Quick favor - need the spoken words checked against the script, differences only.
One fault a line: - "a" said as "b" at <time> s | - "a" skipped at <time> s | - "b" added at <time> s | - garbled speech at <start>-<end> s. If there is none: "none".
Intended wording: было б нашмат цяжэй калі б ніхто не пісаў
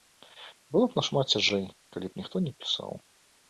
none